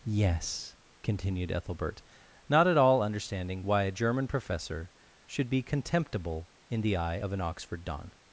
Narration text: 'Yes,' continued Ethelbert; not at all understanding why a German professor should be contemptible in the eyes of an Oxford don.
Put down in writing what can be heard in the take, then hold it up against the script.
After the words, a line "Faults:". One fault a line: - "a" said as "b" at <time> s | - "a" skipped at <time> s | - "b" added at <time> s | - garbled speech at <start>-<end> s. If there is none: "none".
'Yes,' continued Ethelbert; not at all understanding why a German professor should be contemptible in the eye of an Oxford don.
Faults:
- "eyes" said as "eye" at 7.0 s